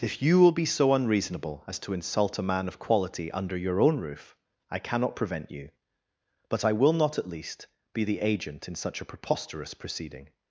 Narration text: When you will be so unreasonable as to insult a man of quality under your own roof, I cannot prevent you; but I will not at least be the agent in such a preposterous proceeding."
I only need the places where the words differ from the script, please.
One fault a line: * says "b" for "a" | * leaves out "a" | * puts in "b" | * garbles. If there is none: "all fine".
* says "If" for "When"